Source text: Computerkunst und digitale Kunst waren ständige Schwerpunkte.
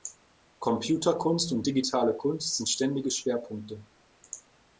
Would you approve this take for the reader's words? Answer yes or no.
no